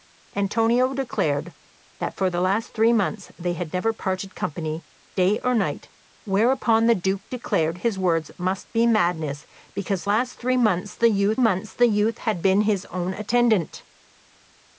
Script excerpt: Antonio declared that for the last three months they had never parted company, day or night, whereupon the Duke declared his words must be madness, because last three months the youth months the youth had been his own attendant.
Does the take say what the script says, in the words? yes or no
yes